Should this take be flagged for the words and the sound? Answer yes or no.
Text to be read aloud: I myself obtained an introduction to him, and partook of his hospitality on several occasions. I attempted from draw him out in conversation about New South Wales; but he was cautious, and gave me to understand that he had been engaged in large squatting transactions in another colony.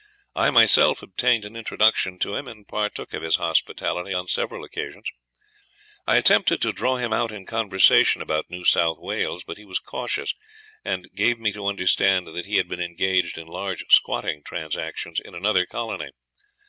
yes